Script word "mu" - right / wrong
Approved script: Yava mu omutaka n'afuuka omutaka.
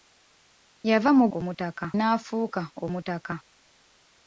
right